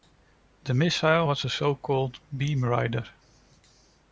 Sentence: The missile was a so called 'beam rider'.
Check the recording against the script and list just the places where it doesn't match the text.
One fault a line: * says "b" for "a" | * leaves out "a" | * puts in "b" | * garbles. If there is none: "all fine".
all fine